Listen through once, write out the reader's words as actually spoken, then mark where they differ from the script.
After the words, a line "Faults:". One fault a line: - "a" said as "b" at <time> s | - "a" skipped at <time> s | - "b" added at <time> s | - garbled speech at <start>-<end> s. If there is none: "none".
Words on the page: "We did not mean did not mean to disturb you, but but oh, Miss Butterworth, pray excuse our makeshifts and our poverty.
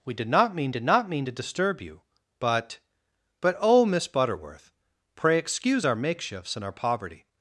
"We did not mean did not mean to disturb you, but but oh, Miss Butterworth, pray excuse our makeshifts and our poverty.
Faults:
none